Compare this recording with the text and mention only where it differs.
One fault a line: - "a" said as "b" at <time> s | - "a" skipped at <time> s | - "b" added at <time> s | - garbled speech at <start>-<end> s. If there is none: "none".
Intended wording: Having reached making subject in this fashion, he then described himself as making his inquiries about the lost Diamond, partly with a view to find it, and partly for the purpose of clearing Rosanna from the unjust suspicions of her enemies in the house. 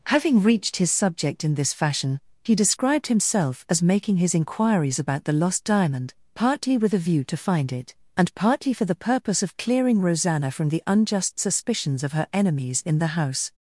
- "making" said as "his" at 0.8 s
- "then" skipped at 2.5 s